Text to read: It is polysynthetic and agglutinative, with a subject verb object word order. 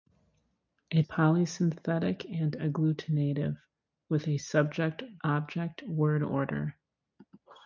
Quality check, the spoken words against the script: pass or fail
fail